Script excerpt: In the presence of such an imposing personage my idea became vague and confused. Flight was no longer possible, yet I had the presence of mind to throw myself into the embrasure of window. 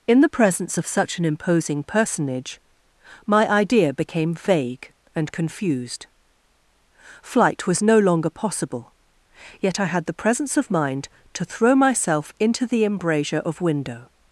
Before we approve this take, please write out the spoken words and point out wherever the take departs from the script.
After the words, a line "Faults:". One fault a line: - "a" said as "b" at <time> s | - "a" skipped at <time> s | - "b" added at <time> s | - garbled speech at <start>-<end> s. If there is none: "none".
In the presence of such an imposing personage my idea became vague and confused. Flight was no longer possible, yet I had the presence of mind to throw myself into the embrasure of window.
Faults:
none